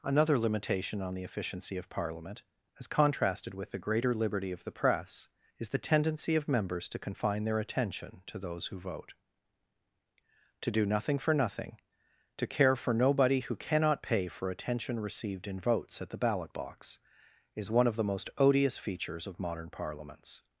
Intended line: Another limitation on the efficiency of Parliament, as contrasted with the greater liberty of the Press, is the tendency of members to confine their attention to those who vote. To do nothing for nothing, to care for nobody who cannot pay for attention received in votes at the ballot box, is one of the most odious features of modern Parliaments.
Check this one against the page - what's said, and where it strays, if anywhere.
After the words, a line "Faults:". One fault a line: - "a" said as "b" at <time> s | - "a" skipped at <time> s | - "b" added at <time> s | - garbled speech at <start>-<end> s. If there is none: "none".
Another limitation on the efficiency of Parliament, as contrasted with the greater liberty of the Press, is the tendency of members to confine their attention to those who vote. To do nothing for nothing, to care for nobody who cannot pay for attention received in votes at the ballot box, is one of the most odious features of modern Parliaments.
Faults:
none